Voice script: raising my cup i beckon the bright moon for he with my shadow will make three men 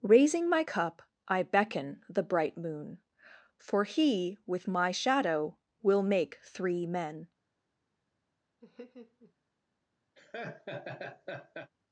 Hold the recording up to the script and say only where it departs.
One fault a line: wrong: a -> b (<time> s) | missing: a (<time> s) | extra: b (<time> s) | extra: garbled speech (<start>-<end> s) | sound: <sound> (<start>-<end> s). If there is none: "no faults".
sound: laugh (8.6-9.3 s)
sound: laugh (10.2-11.7 s)